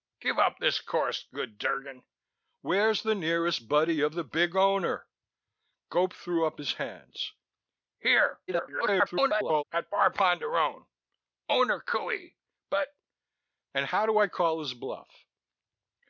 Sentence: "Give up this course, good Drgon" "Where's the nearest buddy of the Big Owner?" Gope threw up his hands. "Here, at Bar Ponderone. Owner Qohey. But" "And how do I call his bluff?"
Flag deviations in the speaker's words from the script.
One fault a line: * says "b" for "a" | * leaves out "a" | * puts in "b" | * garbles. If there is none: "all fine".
* garbles